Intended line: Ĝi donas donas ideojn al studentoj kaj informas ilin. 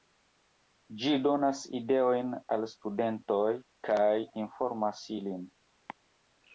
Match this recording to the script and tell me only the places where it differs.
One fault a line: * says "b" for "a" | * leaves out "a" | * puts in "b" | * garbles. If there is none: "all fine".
* leaves out "donas"